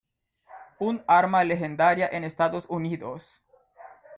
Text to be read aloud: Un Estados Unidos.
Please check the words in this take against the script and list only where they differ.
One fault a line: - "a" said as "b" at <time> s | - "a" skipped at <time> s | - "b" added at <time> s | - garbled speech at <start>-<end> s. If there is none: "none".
- "arma legendaria en" added at 1.1 s